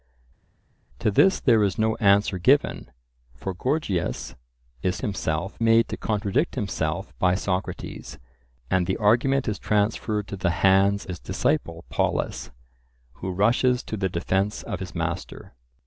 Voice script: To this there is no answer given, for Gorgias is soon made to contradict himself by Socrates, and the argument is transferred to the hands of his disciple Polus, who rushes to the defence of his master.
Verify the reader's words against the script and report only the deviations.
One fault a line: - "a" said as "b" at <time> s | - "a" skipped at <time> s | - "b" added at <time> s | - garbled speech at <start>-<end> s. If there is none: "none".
- "soon" said as "himself" at 5.0 s
- "of" skipped at 11.0 s